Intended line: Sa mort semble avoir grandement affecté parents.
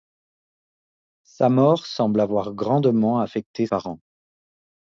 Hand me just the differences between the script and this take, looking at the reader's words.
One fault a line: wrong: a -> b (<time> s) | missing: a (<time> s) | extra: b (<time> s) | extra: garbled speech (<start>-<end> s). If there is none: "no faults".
no faults